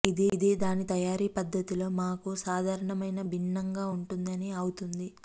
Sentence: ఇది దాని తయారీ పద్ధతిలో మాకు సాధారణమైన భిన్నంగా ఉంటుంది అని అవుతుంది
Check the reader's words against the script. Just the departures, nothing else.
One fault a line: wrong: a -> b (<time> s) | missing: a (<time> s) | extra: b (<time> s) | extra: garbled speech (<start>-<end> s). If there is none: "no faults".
no faults